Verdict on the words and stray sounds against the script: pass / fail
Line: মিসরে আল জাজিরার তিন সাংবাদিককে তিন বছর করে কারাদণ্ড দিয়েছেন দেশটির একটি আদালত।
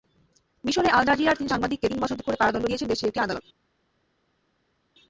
pass